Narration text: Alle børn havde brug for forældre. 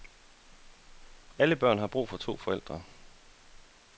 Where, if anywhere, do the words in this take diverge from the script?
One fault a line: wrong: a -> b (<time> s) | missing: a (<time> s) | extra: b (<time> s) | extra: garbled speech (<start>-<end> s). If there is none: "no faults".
wrong: havde -> har (1.8 s)
extra: to (2.2 s)